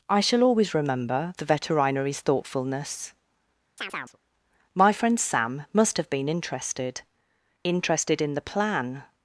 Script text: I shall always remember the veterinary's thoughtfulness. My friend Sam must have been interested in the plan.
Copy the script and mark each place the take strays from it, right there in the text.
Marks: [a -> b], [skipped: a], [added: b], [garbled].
I shall always remember the veterinary's thoughtfulness. My friend Sam must have been interested [added: interested] in the plan.